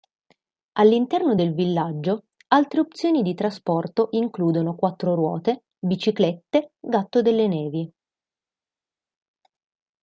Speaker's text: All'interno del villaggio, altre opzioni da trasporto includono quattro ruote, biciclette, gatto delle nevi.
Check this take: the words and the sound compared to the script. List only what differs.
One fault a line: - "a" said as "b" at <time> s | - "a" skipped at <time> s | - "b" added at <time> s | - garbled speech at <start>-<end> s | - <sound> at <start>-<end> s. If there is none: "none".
- "da" said as "di" at 3.2 s